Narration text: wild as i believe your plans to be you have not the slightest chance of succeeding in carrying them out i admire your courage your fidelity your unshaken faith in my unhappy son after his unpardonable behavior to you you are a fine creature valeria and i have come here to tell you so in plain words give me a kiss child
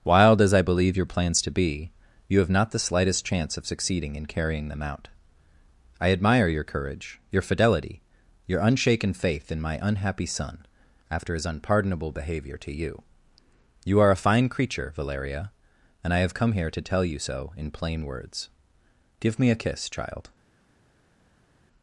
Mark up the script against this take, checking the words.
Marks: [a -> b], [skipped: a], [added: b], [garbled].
wild as i believe your plans to be you have not the slightest chance of succeeding in carrying them out i admire your courage your fidelity your unshaken faith in my unhappy son after his unpardonable behavior to you you are a fine creature valeria and i have come here to tell you so in plain words give me a kiss child